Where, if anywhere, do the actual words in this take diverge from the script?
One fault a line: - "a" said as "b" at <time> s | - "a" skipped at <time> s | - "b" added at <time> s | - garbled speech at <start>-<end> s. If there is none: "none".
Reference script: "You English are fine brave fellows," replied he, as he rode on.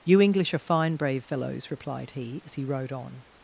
none